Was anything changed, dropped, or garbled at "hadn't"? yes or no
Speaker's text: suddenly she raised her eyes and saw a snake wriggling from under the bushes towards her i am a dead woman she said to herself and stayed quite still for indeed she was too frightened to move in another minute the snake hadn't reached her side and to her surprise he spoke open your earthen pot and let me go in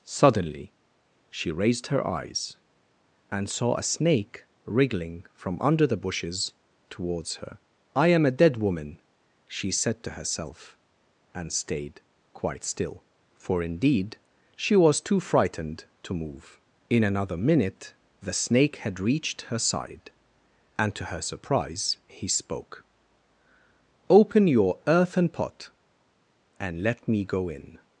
yes